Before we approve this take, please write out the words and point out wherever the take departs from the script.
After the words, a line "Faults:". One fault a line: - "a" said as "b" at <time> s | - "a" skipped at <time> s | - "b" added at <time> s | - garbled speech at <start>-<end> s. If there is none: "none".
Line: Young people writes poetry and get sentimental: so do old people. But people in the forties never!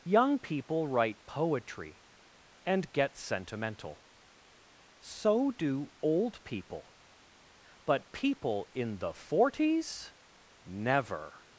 Young people write poetry and get sentimental: so do old people. But people in the forties never!
Faults:
- "writes" said as "write" at 0.9 s